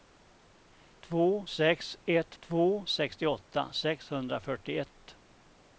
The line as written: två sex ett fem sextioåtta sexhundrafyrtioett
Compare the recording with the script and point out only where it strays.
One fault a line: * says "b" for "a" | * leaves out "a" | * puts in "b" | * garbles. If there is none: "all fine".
* says "två" for "fem"